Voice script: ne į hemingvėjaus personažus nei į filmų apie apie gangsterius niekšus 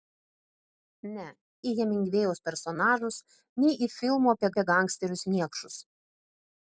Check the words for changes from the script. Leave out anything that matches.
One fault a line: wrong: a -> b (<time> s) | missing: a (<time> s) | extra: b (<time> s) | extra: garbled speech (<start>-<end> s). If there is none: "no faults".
no faults